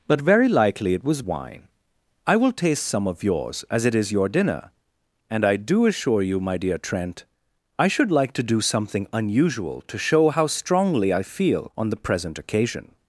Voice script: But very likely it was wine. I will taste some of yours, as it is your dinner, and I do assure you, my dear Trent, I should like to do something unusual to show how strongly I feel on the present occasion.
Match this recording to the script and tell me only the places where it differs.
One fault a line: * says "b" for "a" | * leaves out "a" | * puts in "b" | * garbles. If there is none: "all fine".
all fine